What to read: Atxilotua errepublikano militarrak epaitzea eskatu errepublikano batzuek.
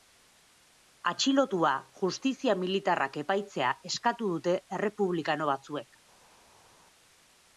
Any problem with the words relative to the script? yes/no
yes